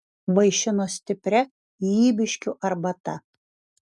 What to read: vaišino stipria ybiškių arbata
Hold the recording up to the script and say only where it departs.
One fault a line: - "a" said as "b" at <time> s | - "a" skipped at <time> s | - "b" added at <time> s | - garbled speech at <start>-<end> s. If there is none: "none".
none